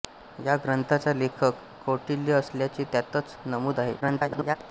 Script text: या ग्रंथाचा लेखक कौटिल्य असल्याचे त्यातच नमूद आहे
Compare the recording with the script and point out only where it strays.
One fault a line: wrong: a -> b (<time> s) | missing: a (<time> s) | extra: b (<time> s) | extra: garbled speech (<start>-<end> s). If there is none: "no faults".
extra: garbled speech (4.0-4.6 s)